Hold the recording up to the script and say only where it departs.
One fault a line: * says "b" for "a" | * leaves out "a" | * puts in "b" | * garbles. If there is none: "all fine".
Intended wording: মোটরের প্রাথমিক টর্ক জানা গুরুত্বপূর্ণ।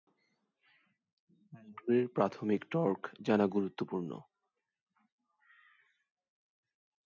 all fine